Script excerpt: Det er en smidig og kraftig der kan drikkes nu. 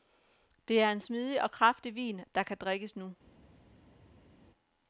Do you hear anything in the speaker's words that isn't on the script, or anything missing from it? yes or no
yes